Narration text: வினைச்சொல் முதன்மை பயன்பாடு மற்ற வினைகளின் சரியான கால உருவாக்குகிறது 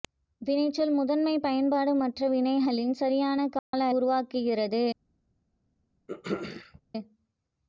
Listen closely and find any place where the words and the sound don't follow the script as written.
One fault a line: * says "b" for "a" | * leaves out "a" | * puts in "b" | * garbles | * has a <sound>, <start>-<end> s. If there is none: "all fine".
* has a dropout, 3.6-3.7 s
* has a throat clearing, 6.1-6.8 s